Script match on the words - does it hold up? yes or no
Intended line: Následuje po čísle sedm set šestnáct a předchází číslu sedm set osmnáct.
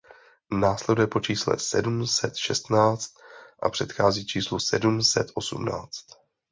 yes